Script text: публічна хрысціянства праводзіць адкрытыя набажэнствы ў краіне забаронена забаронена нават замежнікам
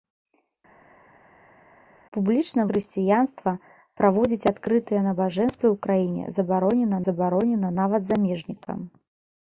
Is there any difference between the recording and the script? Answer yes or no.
no